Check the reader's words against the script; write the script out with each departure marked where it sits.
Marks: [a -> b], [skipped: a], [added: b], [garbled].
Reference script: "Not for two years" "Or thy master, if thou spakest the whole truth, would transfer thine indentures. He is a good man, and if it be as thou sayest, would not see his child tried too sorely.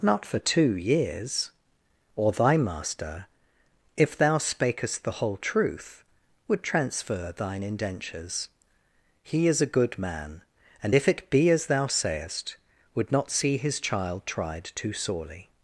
"Not for two years" "Or thy master, if thou spakest the whole truth, would transfer thine indentures. He is a good man, and if it be as thou sayest, would not see his child tried too sorely.